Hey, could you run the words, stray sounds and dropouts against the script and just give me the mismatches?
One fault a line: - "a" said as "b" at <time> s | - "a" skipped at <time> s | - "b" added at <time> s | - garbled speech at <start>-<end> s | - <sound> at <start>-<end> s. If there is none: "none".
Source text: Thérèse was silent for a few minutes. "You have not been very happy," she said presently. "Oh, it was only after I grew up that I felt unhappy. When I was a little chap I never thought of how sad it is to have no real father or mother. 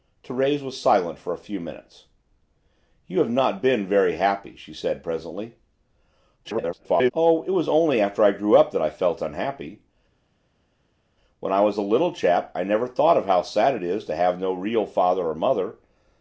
- garbled speech at 6.4-7.1 s